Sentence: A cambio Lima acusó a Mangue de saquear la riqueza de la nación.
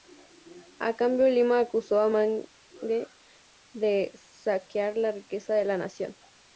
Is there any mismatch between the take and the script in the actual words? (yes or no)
no